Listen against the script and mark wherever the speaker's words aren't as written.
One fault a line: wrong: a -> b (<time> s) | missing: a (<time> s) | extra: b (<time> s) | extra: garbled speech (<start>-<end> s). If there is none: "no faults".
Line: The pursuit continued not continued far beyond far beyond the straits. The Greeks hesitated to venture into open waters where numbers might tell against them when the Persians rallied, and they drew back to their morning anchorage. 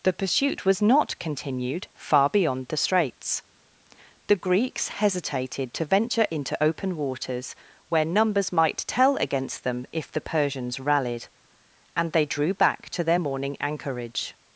wrong: continued -> was (0.7 s)
missing: far beyond (2.7 s)
wrong: when -> if (9.9 s)